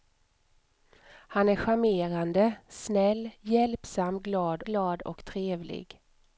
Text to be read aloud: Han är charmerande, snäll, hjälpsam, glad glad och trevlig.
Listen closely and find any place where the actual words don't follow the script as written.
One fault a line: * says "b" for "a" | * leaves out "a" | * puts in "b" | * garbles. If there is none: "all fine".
all fine